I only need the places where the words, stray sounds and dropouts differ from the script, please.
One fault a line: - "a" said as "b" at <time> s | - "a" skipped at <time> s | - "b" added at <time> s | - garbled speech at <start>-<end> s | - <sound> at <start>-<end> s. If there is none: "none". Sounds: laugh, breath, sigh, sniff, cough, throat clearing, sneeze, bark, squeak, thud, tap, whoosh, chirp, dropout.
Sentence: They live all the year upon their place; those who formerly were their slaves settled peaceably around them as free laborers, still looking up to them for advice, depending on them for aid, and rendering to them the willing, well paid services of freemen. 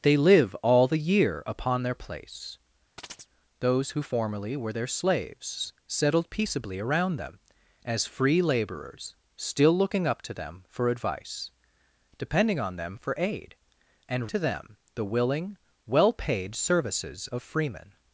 - chirp at 3.0-3.3 s
- "rendering" skipped at 14.3 s